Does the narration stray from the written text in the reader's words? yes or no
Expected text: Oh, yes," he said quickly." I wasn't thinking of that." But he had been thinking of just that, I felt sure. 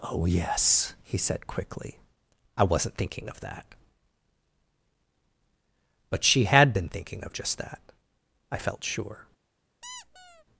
yes